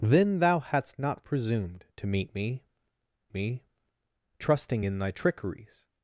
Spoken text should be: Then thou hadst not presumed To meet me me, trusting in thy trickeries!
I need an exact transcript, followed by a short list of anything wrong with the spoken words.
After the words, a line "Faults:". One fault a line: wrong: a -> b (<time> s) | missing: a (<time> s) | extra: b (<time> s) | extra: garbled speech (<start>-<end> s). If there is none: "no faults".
Then thou hadst not presumed To meet me me, trusting in thy trickeries!
Faults:
no faults